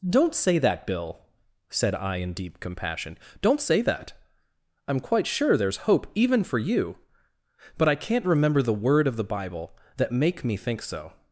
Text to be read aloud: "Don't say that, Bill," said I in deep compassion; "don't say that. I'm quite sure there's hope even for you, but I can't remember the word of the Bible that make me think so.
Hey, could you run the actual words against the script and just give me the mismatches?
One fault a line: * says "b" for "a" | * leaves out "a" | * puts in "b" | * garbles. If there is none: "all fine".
all fine